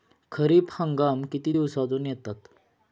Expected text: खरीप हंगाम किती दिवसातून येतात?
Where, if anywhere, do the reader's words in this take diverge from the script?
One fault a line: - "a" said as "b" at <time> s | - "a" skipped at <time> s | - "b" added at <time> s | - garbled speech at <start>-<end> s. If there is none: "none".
none